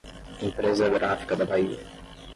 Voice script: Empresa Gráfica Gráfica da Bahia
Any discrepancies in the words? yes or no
yes